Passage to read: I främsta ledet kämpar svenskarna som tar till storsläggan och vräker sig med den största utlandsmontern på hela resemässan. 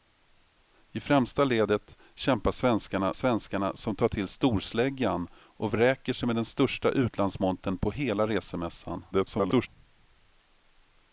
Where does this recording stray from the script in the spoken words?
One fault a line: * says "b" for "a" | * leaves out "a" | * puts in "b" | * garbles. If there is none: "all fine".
* puts in "svenskarna"
* garbles